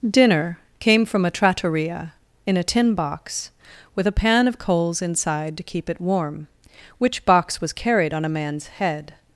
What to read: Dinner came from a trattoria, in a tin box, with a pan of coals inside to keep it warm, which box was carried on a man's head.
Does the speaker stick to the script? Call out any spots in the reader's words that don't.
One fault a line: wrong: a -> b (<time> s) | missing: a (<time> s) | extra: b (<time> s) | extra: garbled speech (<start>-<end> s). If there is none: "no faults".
no faults